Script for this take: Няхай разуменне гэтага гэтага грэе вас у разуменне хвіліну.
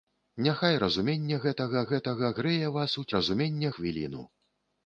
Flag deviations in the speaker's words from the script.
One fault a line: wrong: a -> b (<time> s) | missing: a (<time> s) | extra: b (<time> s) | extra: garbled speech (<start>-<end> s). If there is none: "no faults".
no faults